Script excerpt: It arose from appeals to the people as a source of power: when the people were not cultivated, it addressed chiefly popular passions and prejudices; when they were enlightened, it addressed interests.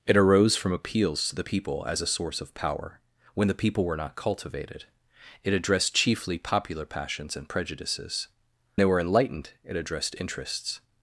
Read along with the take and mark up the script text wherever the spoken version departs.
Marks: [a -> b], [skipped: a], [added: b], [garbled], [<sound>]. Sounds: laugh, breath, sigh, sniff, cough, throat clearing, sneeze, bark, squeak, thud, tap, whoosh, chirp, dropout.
It arose from appeals to the people as a source of power: when the people were not cultivated, it addressed chiefly popular passions and prejudices; [skipped: when] they were enlightened, it addressed interests.